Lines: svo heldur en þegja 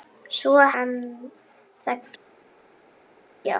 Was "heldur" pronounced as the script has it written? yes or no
no